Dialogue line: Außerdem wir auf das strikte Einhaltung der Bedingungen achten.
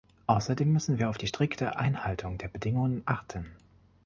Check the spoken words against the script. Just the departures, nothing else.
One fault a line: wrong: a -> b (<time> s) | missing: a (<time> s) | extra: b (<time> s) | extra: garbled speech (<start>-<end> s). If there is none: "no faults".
extra: müssen (0.7 s)
wrong: das -> die (1.2 s)